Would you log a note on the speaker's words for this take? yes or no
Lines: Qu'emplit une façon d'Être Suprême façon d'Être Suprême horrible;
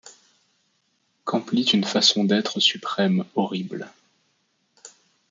yes